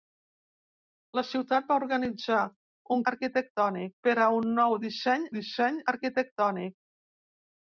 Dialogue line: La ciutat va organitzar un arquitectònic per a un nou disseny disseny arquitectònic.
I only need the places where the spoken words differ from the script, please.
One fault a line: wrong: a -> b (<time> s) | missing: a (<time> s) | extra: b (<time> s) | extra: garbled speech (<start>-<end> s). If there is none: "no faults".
no faults